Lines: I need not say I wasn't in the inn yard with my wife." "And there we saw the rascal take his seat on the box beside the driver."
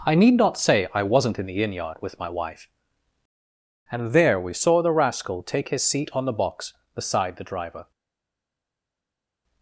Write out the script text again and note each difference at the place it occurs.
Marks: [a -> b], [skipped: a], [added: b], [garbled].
I need not say I wasn't in the inn yard with my wife." "And there we saw the rascal take his seat on the box beside the driver."